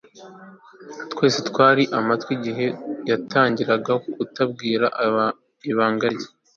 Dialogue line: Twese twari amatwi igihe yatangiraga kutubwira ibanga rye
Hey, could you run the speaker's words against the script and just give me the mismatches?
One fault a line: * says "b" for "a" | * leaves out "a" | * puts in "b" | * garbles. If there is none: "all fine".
all fine